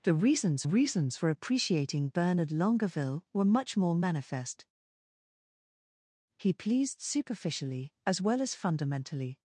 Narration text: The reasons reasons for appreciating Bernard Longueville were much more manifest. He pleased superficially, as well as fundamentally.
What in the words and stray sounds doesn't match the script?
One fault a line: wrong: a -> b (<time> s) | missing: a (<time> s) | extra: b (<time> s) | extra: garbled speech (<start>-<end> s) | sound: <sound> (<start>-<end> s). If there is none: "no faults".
no faults